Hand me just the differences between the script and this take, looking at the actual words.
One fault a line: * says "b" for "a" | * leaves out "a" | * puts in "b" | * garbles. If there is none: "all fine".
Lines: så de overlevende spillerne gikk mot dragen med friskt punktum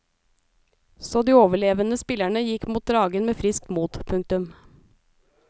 * puts in "mot"